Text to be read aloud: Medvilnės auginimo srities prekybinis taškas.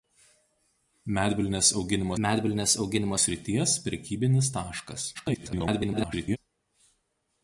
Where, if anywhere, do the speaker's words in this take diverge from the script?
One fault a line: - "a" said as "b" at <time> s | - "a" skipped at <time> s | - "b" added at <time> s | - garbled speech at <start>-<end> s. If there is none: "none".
- "medvilnės auginimo" added at 2.2 s
- garbled speech at 5.1-6.4 s